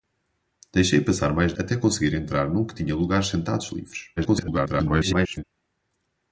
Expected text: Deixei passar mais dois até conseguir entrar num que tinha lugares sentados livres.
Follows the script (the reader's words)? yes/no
no